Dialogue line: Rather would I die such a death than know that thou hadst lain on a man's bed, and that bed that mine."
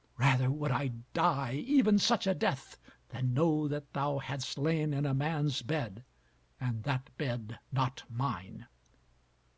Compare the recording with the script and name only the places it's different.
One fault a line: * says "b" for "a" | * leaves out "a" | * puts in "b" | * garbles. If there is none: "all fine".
* puts in "even"
* says "in" for "on"
* says "not" for "that"